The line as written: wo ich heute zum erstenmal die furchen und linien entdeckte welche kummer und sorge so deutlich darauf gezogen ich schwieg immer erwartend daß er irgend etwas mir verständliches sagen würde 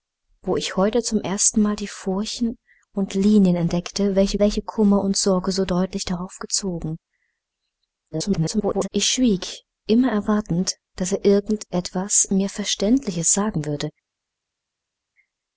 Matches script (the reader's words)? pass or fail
fail